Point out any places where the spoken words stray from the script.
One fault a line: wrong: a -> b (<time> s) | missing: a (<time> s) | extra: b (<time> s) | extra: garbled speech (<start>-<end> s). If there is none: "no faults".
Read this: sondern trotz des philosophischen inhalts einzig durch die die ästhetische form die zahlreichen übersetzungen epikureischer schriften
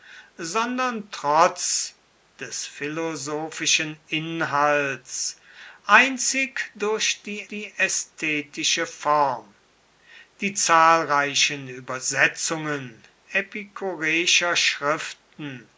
no faults